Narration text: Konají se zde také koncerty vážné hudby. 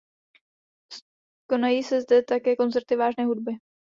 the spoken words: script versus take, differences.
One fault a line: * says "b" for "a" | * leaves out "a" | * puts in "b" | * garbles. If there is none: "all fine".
all fine